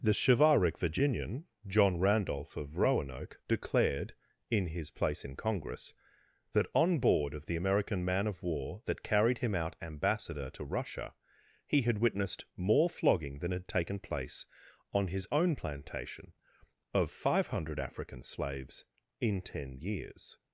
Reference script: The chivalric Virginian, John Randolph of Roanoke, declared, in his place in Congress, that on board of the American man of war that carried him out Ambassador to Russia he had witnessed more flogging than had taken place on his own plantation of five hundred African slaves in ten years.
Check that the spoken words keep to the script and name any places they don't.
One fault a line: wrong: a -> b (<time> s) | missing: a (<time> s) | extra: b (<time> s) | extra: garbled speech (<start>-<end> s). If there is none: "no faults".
no faults